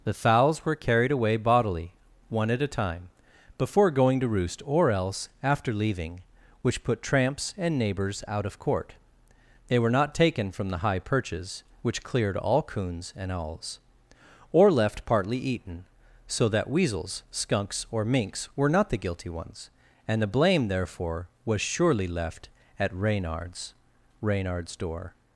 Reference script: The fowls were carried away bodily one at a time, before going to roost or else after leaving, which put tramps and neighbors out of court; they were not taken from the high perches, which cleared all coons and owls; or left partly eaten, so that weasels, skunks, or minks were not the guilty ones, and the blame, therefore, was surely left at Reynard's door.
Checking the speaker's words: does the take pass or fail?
fail